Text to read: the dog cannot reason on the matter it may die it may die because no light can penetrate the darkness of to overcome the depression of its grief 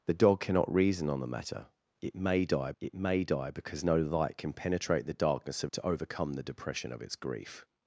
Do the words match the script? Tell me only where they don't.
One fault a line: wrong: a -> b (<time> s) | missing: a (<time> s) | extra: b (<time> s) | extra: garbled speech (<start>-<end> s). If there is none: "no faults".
no faults